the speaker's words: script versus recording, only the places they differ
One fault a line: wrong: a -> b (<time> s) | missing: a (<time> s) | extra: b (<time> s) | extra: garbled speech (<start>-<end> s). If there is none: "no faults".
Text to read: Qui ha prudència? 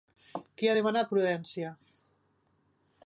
extra: demanat (0.8 s)